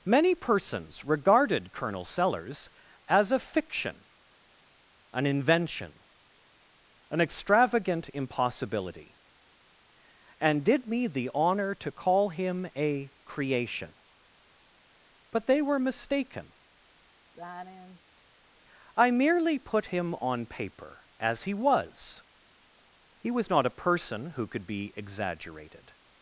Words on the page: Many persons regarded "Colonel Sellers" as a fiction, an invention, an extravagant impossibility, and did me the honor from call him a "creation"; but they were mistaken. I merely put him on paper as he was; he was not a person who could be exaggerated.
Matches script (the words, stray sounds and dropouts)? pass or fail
fail